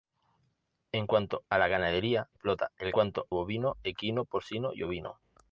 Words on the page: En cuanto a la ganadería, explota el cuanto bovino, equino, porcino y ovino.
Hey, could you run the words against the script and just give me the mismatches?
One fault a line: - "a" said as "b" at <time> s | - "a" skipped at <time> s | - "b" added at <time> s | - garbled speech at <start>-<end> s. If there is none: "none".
none